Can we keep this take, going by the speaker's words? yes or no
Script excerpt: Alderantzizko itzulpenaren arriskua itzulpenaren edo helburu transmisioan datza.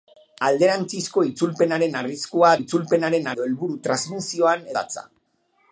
yes